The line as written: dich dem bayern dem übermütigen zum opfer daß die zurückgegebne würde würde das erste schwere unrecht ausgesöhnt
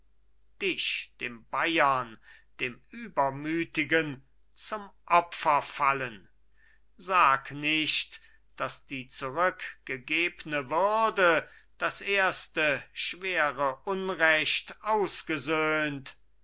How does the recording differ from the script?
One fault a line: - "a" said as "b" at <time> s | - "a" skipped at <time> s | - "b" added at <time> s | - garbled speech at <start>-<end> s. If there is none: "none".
- "fallen sag nicht" added at 5.6 s
- "würde" skipped at 11.5 s